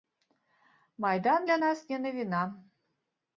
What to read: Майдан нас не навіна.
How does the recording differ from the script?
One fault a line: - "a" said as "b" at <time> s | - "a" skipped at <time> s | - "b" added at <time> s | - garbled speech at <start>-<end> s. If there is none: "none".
- "для" added at 1.4 s